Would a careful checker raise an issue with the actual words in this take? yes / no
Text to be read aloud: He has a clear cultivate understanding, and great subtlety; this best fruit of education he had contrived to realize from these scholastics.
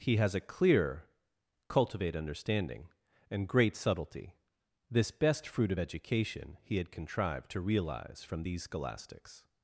no